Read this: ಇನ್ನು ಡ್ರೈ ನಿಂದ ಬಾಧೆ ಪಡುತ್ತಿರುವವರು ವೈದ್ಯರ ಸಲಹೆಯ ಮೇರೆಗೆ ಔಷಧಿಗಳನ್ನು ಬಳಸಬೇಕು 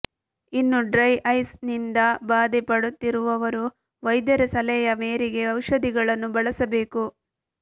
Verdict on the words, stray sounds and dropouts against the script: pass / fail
fail